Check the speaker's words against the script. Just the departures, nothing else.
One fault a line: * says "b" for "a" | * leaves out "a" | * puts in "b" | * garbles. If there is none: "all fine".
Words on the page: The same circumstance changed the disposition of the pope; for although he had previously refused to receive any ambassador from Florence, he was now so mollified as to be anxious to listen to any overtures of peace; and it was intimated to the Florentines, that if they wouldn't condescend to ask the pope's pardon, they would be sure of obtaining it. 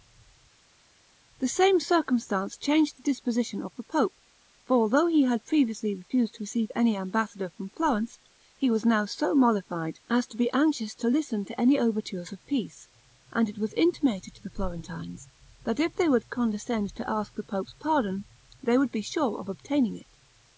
* says "would" for "wouldn't"